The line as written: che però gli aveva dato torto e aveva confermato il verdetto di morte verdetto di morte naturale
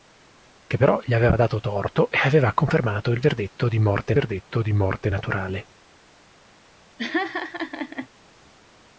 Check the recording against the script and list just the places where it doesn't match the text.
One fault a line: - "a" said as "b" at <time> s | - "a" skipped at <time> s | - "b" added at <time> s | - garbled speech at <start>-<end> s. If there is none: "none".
none